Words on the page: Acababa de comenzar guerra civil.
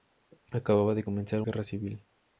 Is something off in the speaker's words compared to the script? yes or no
no